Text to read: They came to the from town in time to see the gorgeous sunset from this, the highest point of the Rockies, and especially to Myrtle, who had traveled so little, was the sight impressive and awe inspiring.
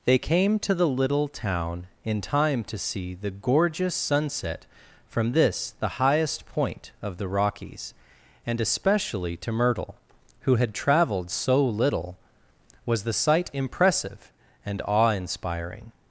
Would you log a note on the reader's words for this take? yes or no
yes